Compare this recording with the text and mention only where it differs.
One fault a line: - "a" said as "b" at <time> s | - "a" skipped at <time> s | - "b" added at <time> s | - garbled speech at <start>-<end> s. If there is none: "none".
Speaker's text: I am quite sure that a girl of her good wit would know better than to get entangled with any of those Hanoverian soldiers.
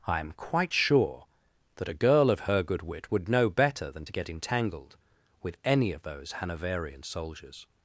none